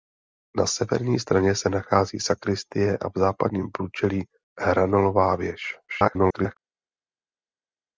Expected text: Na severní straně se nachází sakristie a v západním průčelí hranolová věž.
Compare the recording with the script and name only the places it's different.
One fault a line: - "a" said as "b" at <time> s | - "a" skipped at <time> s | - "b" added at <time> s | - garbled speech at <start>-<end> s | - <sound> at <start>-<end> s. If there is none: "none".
- garbled speech at 5.9-6.6 s